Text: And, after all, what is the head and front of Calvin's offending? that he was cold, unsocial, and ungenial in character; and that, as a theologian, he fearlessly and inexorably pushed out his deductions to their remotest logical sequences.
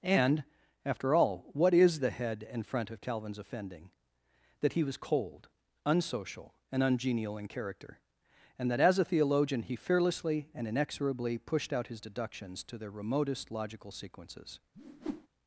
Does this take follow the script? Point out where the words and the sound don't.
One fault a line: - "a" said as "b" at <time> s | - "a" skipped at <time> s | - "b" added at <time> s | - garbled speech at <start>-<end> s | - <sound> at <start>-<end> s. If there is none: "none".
- whoosh at 14.7-15.3 s